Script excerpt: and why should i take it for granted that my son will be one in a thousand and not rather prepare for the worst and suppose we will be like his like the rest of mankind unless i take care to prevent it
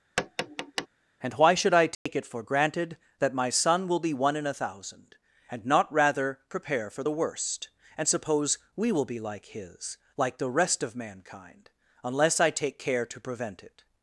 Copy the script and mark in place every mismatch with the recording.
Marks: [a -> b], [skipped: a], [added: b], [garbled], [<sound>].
[tap] and why should i take [dropout] it for granted that my son will be one in a thousand and not rather prepare for the worst and suppose we will be like his like the rest of mankind unless i take care to prevent it